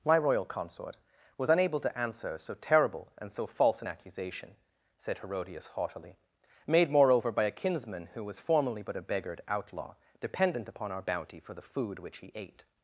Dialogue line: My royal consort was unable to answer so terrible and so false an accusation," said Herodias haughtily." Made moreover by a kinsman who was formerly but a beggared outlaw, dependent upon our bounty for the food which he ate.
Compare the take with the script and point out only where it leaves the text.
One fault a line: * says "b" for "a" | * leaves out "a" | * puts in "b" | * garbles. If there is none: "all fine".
all fine